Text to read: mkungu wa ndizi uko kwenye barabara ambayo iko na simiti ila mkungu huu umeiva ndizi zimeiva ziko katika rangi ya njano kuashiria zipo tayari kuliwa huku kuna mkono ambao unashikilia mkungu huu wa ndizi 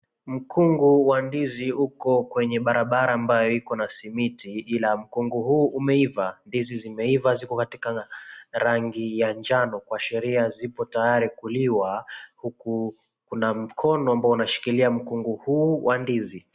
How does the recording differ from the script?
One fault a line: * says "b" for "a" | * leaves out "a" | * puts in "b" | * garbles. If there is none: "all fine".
all fine